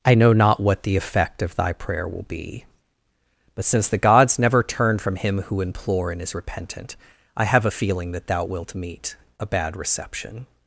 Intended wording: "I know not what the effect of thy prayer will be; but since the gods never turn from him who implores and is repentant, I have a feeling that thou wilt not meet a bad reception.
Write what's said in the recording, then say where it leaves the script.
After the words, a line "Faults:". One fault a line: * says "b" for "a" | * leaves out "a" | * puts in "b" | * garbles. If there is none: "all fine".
"I know not what the effect of thy prayer will be; but since the gods never turn from him who implore and is repentant, I have a feeling that thou wilt meet a bad reception.
Faults:
* says "implore" for "implores"
* leaves out "not"